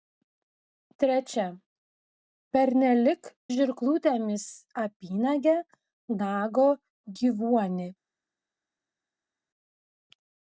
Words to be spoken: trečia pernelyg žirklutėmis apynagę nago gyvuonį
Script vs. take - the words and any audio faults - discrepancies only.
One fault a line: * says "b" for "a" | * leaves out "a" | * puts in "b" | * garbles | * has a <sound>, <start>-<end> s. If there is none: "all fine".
all fine